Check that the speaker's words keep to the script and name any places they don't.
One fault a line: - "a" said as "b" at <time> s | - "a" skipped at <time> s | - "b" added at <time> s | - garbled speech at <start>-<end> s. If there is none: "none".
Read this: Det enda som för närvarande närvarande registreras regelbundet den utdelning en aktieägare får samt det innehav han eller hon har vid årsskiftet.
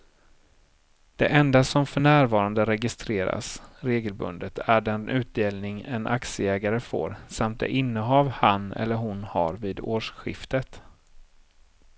- "närvarande" skipped at 2.6 s
- "är" added at 4.6 s